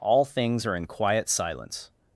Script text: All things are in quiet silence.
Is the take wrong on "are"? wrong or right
right